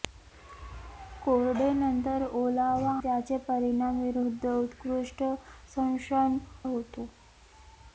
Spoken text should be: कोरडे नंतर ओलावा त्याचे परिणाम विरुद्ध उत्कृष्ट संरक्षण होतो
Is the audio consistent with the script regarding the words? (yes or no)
yes